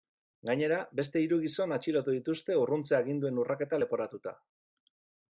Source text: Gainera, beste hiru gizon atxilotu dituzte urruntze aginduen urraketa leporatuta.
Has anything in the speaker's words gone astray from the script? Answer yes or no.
no